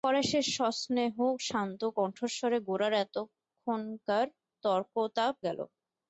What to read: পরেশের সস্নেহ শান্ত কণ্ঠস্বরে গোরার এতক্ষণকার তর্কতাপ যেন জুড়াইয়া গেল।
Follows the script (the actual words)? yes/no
no